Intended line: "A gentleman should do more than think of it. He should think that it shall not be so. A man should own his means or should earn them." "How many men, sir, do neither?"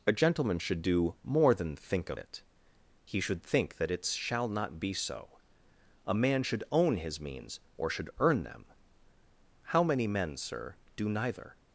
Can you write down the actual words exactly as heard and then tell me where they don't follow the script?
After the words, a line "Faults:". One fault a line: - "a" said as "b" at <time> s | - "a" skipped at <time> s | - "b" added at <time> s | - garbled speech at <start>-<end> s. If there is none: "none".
"A gentleman should do more than think of it. He should think that it shall not be so. A man should own his means or should earn them." "How many men, sir, do neither?"
Faults:
none